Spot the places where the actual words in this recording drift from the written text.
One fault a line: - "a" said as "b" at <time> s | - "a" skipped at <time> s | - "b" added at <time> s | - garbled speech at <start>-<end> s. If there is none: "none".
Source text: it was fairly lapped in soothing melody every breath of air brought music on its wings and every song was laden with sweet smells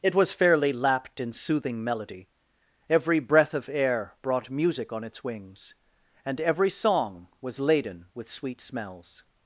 none